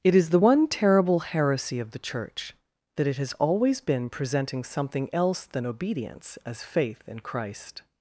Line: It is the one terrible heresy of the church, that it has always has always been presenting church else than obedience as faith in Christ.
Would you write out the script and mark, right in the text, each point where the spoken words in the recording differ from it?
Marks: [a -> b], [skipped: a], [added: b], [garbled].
It is the one terrible heresy of the church, that it has always [skipped: has always] been presenting [church -> something] else than obedience as faith in Christ.